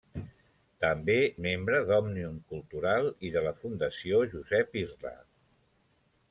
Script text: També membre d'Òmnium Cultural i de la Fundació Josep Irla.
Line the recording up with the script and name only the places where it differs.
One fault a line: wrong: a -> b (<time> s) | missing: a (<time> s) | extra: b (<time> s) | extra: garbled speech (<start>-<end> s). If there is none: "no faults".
no faults